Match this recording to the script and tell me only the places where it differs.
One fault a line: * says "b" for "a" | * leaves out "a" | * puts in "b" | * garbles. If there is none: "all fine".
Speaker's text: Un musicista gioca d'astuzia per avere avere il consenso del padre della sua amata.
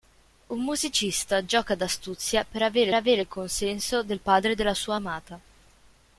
all fine